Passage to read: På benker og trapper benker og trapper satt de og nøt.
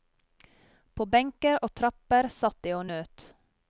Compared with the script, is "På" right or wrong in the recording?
right